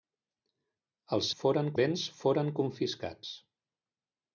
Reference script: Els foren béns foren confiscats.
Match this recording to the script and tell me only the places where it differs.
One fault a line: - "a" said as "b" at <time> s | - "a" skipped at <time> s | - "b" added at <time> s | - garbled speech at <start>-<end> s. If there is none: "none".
none